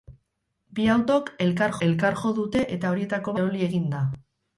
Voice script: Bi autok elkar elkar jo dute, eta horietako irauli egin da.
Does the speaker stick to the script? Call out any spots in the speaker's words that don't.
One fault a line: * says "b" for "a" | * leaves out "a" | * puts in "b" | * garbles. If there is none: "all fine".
all fine